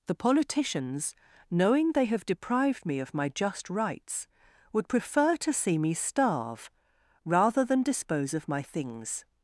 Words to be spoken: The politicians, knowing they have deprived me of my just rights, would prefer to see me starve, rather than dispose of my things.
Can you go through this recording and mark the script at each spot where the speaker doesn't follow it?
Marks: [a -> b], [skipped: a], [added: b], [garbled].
The politicians, knowing they have deprived me of my just rights, would prefer to see me starve, rather than dispose of my things.